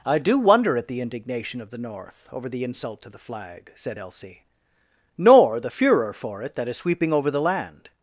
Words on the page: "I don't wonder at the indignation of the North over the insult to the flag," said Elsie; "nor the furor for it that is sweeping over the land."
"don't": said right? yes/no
no